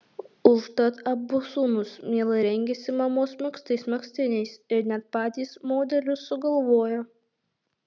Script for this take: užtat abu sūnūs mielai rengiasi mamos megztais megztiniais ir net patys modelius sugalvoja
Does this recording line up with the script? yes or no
yes